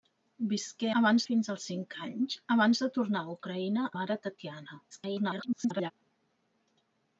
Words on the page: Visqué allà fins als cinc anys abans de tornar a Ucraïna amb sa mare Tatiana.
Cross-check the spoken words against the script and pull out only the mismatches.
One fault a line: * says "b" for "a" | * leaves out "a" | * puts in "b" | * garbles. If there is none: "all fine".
* says "abans" for "allà"
* leaves out "amb sa"
* garbles